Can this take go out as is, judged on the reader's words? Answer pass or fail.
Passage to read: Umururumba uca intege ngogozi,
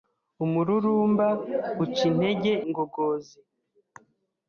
pass